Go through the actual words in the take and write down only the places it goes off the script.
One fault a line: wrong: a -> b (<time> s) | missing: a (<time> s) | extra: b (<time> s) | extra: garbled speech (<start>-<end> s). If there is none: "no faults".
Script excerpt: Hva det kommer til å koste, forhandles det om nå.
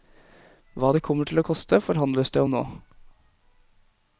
no faults